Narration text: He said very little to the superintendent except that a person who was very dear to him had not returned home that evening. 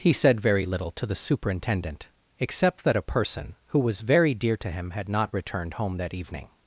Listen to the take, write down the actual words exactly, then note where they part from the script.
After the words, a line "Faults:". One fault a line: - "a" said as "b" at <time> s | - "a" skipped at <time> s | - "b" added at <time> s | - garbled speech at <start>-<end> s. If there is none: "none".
He said very little to the superintendent except that a person who was very dear to him had not returned home that evening.
Faults:
none